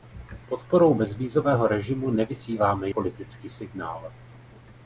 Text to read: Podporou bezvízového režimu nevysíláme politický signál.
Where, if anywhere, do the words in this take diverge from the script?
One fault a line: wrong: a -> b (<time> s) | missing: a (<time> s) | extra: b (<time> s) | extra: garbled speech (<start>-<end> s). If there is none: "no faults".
no faults